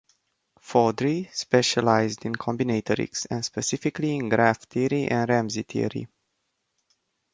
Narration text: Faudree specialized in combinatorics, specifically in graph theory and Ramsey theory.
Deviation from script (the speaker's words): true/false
true